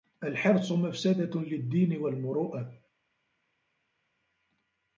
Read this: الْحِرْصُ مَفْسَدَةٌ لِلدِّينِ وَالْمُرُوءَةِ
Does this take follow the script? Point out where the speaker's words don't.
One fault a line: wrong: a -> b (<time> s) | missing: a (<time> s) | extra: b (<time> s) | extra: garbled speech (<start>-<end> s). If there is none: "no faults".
no faults